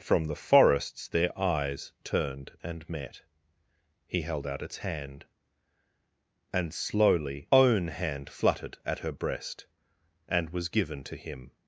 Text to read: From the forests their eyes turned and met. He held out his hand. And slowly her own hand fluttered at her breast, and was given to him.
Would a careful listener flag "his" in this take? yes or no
yes